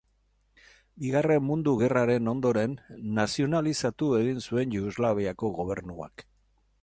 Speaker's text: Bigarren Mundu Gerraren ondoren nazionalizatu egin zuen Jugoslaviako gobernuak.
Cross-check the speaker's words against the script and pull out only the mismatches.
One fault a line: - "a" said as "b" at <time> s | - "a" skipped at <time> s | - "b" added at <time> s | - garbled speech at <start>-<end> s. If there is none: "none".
none